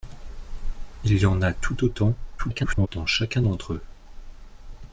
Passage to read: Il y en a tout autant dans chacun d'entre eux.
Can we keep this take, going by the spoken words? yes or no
no